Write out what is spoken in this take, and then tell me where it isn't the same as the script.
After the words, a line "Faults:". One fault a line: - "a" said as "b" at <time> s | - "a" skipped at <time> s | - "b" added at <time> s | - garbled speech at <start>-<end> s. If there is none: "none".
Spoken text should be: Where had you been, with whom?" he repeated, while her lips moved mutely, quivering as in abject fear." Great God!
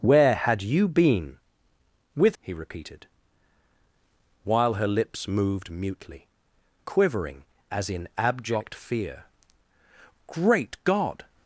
Where had you been, with?" he repeated, while her lips moved mutely, quivering as in abject fear." Great God!
Faults:
- "whom" skipped at 2.4 s